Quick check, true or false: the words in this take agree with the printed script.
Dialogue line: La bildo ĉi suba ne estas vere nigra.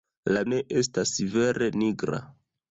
false